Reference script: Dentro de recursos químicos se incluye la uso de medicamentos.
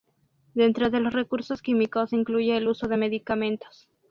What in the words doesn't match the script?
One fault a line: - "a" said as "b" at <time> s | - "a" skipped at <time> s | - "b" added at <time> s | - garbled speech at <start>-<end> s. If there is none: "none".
- "los" added at 1.0 s
- "la" said as "el" at 2.6 s